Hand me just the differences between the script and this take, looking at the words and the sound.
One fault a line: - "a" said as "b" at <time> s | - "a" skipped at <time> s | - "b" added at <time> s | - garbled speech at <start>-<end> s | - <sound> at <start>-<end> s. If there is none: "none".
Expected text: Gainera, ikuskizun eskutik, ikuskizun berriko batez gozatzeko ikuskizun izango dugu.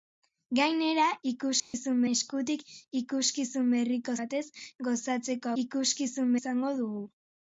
- dropout at 1.6-1.7 s